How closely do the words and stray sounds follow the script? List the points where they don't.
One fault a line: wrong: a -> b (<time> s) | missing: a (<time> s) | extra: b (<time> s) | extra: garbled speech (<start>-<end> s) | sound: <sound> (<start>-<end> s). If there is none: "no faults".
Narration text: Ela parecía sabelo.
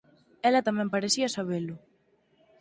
extra: tamén (0.7 s)